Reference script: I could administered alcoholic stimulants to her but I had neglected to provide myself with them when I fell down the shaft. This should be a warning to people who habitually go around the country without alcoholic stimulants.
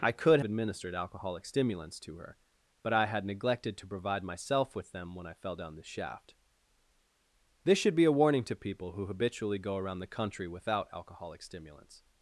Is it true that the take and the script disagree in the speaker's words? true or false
false